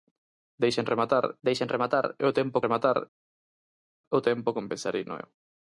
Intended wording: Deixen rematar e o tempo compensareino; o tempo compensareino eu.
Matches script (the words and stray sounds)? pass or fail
fail